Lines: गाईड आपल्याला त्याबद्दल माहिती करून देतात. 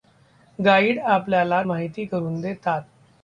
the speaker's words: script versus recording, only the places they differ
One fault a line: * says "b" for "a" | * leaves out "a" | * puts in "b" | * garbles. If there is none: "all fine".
* leaves out "त्याबद्दल"